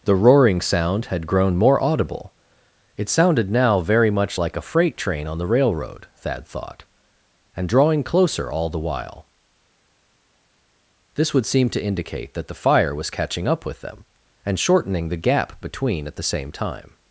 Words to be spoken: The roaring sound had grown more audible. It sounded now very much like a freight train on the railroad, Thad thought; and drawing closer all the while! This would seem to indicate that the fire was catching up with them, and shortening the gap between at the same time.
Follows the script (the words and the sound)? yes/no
yes